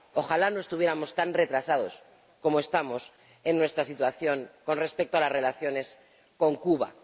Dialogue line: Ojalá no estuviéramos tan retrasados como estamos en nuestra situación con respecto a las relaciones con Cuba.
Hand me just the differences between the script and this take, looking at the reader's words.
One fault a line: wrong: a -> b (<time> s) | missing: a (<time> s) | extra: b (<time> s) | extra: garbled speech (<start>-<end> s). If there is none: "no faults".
no faults